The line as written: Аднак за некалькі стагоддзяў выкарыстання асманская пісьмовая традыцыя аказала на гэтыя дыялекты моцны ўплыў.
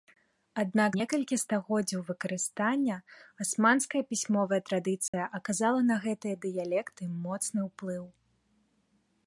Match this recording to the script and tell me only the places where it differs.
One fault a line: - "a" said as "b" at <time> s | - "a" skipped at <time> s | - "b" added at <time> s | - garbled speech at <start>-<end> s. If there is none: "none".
- "за" skipped at 0.9 s